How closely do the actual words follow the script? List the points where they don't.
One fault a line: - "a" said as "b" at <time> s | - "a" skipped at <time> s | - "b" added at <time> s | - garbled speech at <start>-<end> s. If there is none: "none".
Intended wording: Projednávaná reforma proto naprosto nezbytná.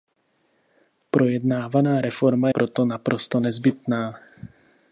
none